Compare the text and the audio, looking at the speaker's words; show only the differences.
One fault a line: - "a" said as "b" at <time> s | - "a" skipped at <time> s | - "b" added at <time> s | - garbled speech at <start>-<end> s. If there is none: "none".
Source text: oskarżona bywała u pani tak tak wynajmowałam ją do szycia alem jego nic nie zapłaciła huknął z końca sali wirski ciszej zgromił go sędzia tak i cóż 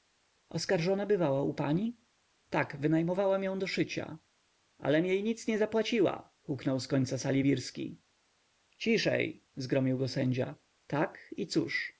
- "tak" skipped at 2.8 s
- "jego" said as "jej" at 5.0 s